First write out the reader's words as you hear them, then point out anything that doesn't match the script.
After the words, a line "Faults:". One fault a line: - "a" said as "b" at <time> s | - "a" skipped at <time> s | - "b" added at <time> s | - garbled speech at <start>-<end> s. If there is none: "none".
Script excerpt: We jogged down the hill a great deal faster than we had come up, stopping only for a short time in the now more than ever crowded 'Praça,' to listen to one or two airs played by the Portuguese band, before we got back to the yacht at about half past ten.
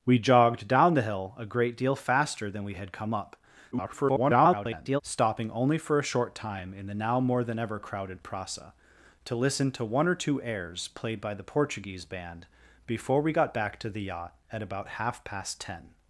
We jogged down the hill a great deal faster than we had come up, [garbled] stopping only for a short time in the now more than ever crowded 'Praça,' to listen to one or two airs played by the Portuguese band, before we got back to the yacht at about half past ten.
Faults:
- garbled speech at 3.7-5.0 s